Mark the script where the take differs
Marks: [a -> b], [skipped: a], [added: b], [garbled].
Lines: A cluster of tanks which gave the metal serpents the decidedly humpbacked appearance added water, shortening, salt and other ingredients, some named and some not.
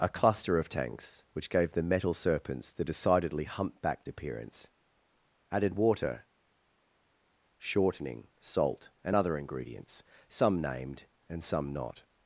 A cluster of tanks which gave the metal serpents the decidedly humpbacked appearance added water, shortening, salt and other ingredients, some named and some not.